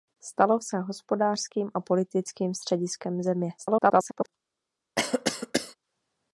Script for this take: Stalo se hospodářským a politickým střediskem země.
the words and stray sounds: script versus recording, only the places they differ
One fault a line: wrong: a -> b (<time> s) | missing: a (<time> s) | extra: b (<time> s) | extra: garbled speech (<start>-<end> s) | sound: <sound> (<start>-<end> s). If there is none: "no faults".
extra: garbled speech (3.6-4.3 s)
sound: cough (5.0-5.8 s)